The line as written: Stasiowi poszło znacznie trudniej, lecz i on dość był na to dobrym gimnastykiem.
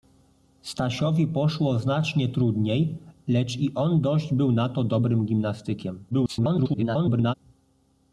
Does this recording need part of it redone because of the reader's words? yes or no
yes